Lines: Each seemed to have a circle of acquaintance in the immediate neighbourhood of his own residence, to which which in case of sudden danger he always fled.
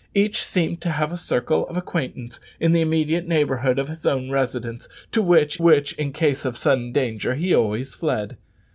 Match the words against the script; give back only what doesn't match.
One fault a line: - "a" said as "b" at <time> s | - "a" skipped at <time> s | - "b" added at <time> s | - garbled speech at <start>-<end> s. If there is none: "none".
none